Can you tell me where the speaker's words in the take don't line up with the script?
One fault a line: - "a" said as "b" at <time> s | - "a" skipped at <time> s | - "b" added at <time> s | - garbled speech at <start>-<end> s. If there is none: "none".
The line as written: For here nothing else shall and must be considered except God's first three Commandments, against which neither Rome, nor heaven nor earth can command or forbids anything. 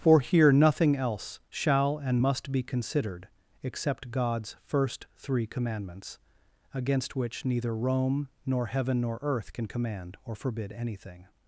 - "forbids" said as "forbid" at 10.4 s